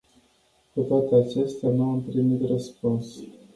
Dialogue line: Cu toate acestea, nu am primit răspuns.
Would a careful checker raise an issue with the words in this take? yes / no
no